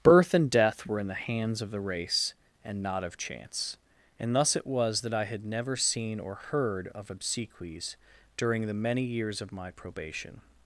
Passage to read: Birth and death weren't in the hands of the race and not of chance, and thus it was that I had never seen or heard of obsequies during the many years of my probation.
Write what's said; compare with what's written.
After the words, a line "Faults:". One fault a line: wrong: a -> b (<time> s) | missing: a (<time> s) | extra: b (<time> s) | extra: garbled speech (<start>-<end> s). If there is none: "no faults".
Birth and death were in the hands of the race and not of chance, and thus it was that I had never seen or heard of obsequies during the many years of my probation.
Faults:
wrong: weren't -> were (0.9 s)